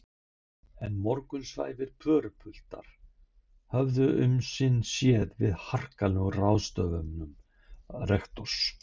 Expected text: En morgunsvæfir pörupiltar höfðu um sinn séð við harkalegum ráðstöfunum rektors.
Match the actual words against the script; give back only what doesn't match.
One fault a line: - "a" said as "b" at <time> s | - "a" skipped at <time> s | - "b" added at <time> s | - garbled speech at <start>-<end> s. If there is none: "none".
none